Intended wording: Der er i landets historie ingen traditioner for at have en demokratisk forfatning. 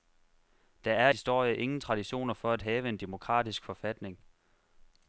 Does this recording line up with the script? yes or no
no